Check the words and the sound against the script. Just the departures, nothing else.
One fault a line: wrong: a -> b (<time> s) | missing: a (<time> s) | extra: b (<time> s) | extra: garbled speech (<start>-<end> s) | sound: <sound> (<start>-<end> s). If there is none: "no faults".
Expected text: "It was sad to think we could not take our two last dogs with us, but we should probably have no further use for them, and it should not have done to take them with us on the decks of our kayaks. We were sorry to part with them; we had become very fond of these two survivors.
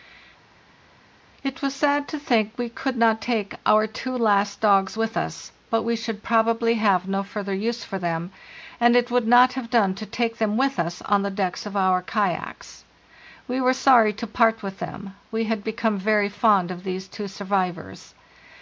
wrong: should -> would (9.1 s)